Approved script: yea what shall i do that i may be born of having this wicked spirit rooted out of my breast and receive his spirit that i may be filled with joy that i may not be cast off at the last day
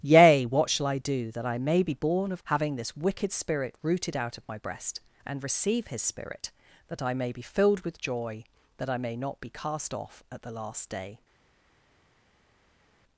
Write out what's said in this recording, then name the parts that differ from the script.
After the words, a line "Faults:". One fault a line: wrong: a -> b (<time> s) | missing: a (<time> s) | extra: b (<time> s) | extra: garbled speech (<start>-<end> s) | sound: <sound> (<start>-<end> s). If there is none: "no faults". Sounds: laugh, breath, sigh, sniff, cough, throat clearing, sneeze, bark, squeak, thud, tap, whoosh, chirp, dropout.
yea what shall i do that i may be born of having this wicked spirit rooted out of my breast and receive his spirit that i may be filled with joy that i may not be cast off at the last day
Faults:
no faults